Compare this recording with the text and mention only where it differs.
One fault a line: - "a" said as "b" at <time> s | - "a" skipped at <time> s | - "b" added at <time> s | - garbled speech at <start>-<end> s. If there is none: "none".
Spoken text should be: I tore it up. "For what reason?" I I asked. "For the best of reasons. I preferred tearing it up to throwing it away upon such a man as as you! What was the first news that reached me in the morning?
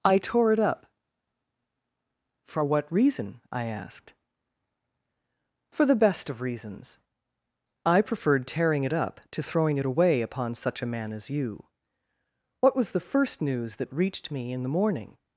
- "I" skipped at 3.6 s
- "as" skipped at 11.3 s